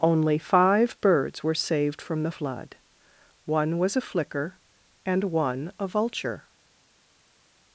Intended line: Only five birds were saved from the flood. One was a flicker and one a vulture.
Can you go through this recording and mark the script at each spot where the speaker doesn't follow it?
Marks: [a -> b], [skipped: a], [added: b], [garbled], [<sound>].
Only five birds were saved from the flood. One was a flicker and one a vulture.